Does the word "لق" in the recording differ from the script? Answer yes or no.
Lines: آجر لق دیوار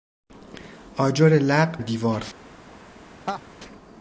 no